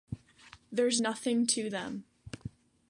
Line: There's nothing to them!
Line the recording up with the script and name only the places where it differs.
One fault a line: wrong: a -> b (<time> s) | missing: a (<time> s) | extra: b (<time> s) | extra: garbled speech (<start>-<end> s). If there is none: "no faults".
no faults